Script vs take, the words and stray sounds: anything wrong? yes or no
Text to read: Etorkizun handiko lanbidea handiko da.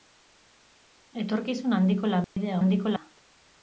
yes